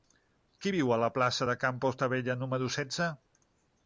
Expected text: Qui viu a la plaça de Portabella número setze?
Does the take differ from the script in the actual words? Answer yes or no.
yes